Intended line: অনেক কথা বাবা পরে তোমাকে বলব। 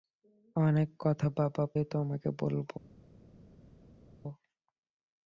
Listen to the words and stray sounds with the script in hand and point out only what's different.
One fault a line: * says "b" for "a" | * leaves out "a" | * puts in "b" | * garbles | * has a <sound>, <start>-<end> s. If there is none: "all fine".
* leaves out "পরে"